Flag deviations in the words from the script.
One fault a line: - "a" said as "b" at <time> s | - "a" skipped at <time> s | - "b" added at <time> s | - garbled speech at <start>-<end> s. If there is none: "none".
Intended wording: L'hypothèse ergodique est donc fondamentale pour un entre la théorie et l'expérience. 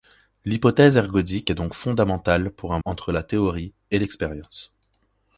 none